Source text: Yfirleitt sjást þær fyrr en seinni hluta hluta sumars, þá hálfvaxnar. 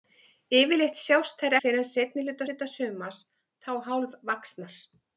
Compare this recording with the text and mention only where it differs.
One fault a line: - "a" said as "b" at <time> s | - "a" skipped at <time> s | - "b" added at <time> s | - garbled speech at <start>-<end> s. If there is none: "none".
none